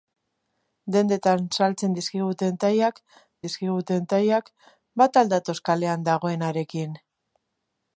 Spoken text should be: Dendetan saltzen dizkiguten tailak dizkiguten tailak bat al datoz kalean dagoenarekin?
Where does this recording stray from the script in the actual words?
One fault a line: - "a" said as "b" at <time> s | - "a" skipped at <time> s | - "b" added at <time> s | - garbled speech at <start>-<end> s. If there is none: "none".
none